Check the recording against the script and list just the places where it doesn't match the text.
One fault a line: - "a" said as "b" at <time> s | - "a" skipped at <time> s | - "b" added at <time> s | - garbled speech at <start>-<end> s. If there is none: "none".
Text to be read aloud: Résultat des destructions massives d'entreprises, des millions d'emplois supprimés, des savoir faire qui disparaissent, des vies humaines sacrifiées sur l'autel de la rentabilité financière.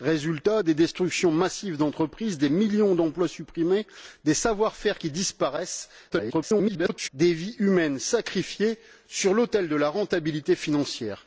- garbled speech at 6.1-7.1 s